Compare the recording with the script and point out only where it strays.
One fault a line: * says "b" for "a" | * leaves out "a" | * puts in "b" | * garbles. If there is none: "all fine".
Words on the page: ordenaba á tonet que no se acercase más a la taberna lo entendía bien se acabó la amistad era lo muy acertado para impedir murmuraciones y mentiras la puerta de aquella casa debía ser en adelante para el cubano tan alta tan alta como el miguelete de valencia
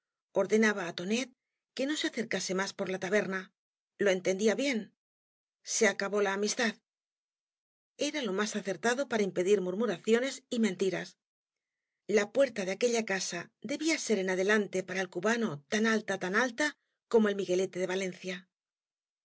* says "por" for "a"
* says "más" for "muy"